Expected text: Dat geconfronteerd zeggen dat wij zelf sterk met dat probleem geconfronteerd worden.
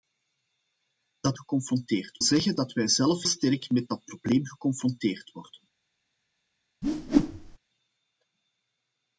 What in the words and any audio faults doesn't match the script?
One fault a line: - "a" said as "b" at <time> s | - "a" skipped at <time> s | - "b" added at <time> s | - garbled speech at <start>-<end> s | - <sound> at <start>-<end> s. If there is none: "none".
- whoosh at 6.8-7.6 s